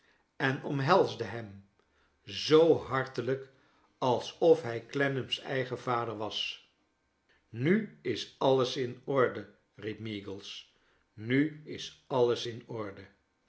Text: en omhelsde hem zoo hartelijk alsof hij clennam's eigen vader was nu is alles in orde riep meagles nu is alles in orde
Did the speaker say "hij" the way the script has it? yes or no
yes